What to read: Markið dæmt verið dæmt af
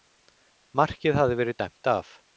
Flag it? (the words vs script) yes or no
yes